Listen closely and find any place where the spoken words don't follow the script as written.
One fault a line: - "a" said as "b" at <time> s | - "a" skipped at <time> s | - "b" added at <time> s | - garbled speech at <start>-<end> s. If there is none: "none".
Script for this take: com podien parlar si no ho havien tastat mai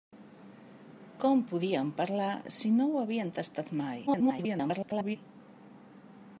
- garbled speech at 4.1-5.2 s